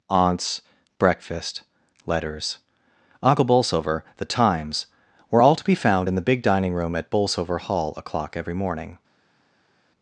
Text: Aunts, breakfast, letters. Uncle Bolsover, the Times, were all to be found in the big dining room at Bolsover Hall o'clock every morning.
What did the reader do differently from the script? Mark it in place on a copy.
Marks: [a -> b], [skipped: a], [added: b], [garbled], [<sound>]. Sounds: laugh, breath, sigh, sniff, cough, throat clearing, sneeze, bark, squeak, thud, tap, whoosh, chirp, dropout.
Aunts, breakfast, letters. Uncle Bolsover, the Times, were all to be found in the big dining room at Bolsover Hall o'clock every morning.